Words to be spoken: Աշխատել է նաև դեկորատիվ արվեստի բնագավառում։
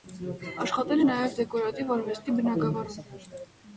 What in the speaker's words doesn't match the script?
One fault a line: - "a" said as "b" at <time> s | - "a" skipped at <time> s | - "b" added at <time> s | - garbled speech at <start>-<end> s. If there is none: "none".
none